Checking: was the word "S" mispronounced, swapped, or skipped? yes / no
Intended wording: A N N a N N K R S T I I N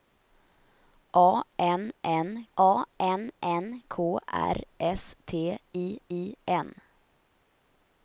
no